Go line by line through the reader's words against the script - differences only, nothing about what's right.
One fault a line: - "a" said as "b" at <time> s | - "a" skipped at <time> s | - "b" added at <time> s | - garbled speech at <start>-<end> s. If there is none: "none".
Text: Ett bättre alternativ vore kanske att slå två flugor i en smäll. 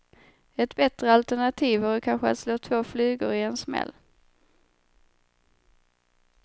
none